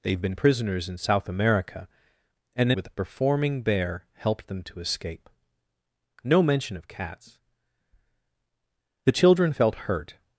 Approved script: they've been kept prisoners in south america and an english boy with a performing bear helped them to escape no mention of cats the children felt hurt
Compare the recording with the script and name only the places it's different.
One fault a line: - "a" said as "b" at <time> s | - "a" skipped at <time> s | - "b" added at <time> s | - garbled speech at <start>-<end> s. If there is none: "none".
- "kept" skipped at 0.3 s
- "an english boy" skipped at 2.7 s